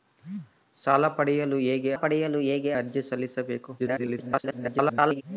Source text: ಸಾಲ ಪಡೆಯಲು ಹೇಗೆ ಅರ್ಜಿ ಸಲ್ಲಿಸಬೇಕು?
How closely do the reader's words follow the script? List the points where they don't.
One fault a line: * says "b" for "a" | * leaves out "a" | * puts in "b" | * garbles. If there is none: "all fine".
* puts in "ಪಡೆಯಲು ಹೇಗೆ"
* garbles